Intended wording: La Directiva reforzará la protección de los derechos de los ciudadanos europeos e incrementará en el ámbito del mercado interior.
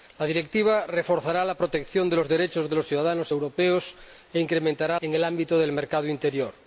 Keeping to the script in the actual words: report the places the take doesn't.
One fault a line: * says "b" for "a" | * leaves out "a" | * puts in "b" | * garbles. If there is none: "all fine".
all fine